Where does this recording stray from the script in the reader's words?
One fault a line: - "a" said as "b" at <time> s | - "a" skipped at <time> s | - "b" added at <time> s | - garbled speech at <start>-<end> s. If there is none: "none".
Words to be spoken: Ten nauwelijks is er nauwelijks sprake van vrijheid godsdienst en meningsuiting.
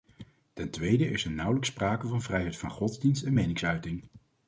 - "nauwelijks" said as "tweede" at 0.7 s
- "van" added at 2.6 s